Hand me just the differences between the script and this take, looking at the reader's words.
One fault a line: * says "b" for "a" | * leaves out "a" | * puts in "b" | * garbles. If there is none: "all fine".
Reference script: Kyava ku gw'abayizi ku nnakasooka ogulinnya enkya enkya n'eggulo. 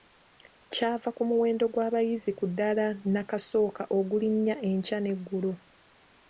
* puts in "muwendo"
* puts in "ddaala"
* leaves out "enkya"